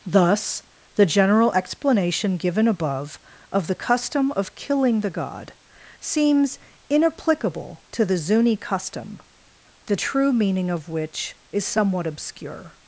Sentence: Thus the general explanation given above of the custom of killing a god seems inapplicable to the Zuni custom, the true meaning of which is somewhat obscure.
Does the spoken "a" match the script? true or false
false